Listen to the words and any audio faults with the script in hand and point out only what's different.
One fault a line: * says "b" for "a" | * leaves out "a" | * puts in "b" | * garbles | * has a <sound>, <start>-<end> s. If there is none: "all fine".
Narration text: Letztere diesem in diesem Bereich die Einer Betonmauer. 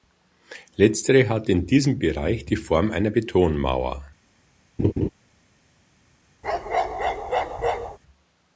* says "hat" for "diesem"
* puts in "Form"
* has a laugh, 4.8-5.1 s
* has a bark, 6.4-8.0 s